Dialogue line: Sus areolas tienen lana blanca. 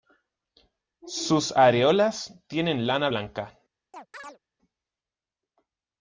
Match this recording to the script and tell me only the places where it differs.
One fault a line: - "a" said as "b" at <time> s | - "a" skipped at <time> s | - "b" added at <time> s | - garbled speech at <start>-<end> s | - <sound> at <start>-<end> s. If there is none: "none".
- chirp at 3.9-4.4 s